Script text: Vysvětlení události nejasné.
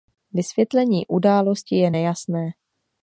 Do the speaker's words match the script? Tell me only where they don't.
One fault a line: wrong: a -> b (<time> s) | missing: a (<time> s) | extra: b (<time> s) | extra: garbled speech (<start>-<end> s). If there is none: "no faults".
extra: je (1.8 s)